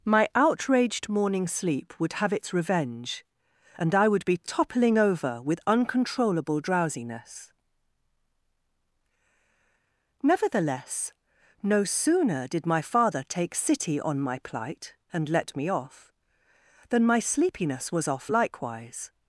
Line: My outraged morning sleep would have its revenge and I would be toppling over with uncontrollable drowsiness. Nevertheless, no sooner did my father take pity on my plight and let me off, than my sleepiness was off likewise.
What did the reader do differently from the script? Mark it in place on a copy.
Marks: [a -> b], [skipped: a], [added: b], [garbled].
My outraged morning sleep would have its revenge and I would be toppling over with uncontrollable drowsiness. Nevertheless, no sooner did my father take [pity -> city] on my plight and let me off, than my sleepiness was off likewise.